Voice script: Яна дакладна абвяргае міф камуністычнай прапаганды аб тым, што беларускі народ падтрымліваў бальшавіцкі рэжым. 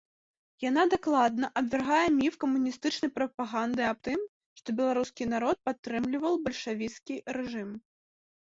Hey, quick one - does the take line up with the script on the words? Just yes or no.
yes